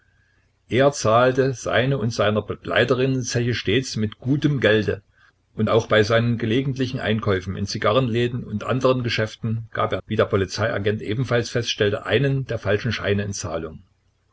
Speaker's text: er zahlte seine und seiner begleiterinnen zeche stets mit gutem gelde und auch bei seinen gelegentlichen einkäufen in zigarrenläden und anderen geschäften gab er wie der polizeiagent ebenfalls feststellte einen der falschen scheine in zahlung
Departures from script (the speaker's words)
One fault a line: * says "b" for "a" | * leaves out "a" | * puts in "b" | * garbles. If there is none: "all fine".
all fine